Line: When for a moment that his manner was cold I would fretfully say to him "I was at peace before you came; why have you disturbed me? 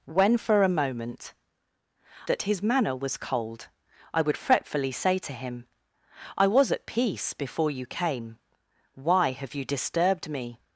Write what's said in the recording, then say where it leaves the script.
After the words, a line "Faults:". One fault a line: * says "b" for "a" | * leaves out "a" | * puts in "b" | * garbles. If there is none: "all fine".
When for a moment that his manner was cold I would fretfully say to him "I was at peace before you came; why have you disturbed me?
Faults:
all fine